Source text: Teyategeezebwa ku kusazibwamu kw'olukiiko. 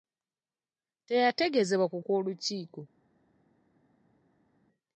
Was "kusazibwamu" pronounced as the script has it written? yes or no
no